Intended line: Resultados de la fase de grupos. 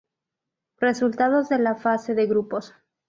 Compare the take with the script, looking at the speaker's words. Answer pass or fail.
pass